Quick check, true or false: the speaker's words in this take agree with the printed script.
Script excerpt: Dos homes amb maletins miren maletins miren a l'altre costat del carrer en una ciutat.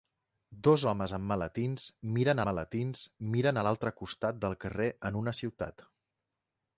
true